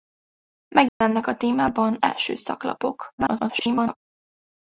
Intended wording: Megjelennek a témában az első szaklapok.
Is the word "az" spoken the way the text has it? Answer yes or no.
no